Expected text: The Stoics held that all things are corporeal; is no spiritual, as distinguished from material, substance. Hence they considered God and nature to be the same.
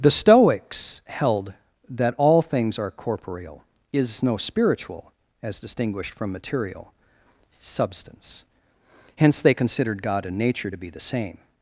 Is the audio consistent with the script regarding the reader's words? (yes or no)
yes